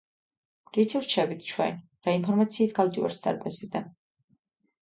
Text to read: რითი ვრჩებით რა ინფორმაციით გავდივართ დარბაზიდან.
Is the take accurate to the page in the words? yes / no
no